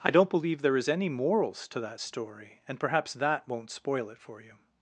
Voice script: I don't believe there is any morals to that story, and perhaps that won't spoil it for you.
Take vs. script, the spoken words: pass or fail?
pass